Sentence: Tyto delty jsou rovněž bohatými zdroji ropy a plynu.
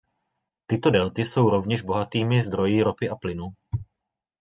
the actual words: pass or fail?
pass